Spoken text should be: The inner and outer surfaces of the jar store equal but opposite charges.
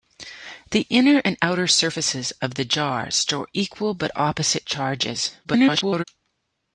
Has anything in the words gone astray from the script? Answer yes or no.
yes